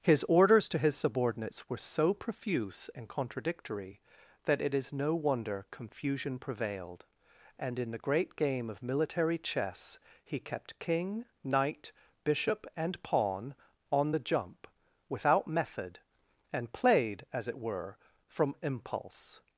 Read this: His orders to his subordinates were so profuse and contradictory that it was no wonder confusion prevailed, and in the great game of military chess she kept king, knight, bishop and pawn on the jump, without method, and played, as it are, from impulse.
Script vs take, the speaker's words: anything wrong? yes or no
yes